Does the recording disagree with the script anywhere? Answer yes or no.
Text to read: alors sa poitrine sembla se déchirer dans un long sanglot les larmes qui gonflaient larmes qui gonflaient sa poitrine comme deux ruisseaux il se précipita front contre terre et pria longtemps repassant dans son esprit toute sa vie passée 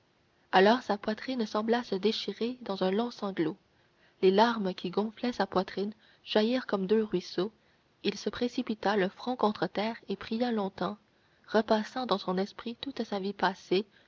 yes